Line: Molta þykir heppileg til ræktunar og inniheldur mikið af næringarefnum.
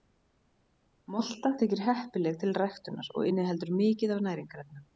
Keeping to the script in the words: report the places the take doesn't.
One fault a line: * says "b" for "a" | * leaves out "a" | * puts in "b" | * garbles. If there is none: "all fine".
all fine